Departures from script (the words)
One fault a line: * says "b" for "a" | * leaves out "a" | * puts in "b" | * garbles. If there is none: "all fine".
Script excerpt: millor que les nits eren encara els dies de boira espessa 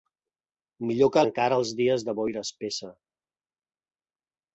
* leaves out "les nits eren"